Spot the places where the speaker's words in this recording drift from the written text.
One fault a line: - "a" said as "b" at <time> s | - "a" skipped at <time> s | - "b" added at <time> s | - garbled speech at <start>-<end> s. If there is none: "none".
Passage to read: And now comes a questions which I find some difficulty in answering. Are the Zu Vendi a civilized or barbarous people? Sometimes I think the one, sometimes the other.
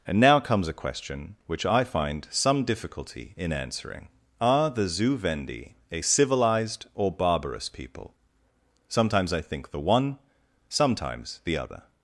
- "questions" said as "question" at 0.7 s